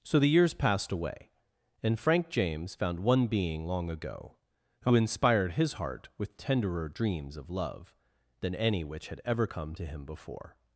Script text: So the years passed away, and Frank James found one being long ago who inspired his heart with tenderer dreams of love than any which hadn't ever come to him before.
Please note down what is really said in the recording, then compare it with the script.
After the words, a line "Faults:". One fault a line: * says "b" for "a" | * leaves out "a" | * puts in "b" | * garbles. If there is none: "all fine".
So the years passed away, and Frank James found one being long ago who inspired his heart with tenderer dreams of love than any which had ever come to him before.
Faults:
* says "had" for "hadn't"